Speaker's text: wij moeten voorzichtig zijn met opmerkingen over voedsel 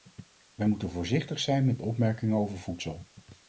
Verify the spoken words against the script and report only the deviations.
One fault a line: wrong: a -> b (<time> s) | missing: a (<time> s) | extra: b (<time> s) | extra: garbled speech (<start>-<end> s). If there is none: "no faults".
no faults